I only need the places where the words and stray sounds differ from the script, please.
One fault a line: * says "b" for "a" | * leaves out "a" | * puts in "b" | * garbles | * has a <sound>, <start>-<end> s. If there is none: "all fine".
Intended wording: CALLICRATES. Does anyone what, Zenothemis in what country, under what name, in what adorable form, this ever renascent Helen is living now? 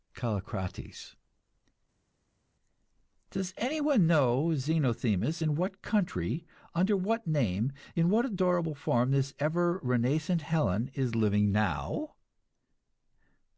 * says "know" for "what"